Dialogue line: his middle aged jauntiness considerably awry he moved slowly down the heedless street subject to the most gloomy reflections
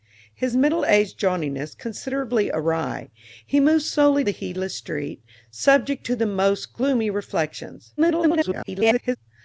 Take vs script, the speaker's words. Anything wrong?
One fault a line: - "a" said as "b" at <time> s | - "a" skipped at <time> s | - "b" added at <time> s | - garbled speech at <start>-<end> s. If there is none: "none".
- "down" skipped at 4.2 s
- garbled speech at 8.0-9.2 s